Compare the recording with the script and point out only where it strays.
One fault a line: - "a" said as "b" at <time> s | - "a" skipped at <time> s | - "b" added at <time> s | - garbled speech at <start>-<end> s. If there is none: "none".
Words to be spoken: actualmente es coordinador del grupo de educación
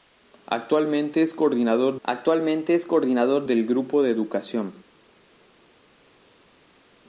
- "actualmente es coordinador" added at 2.0 s